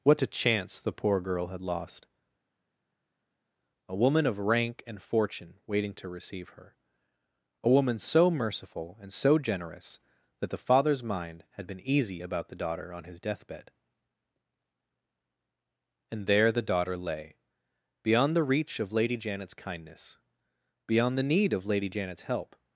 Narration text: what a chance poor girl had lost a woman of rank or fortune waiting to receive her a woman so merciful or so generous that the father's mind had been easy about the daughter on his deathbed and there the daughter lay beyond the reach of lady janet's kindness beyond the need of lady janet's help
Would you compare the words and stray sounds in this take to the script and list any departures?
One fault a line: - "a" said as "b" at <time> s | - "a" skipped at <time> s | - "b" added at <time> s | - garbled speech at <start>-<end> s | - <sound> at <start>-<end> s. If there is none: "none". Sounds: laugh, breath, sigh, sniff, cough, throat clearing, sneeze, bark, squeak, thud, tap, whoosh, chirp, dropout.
- "the" added at 0.8 s
- "or" said as "and" at 4.9 s
- "or" said as "and" at 9.0 s